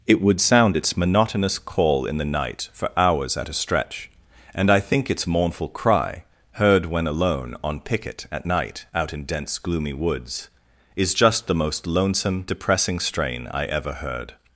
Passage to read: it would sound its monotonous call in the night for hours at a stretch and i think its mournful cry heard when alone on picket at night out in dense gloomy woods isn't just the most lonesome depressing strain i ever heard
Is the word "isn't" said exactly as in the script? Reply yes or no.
no